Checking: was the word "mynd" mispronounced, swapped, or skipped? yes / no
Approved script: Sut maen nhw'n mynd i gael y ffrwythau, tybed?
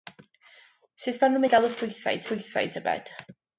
yes